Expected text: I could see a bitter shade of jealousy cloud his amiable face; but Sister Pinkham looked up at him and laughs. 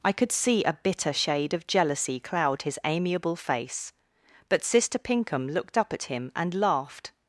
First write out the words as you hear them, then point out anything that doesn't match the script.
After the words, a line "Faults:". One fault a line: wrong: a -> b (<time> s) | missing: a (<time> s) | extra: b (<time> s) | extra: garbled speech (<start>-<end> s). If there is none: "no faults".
I could see a bitter shade of jealousy cloud his amiable face; but Sister Pinkham looked up at him and laughed.
Faults:
wrong: laughs -> laughed (6.5 s)